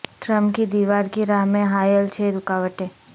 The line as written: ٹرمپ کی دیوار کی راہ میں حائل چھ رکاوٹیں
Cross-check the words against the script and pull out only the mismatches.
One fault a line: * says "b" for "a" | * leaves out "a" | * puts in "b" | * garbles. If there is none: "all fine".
all fine